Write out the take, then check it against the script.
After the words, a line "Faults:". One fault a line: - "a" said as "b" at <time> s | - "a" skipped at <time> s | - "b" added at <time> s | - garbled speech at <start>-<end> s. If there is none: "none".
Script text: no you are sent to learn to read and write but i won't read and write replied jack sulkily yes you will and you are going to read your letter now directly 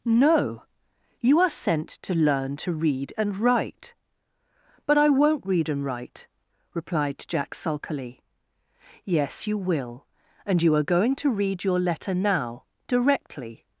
no you are sent to learn to read and write but i won't read and write replied jack sulkily yes you will and you are going to read your letter now directly
Faults:
none